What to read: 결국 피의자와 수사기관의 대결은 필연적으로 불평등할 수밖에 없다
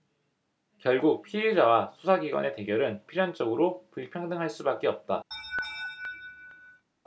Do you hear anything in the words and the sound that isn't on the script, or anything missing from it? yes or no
yes